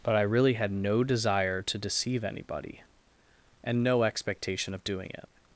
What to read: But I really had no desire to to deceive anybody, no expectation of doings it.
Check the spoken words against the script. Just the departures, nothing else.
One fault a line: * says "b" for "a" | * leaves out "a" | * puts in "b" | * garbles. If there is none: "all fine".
* leaves out "to"
* puts in "and"
* says "doing" for "doings"